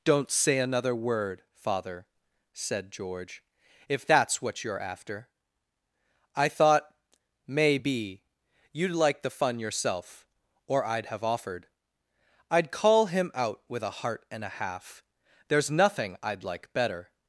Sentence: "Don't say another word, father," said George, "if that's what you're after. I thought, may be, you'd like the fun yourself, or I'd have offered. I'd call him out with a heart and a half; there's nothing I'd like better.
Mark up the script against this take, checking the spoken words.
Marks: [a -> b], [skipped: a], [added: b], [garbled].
"Don't say another word, father," said George, "if that's what you're after. I thought, may be, you'd like the fun yourself, or I'd have offered. I'd call him out with a heart and a half; there's nothing I'd like better.